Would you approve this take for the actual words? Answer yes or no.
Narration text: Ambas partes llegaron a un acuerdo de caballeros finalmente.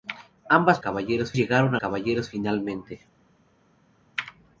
no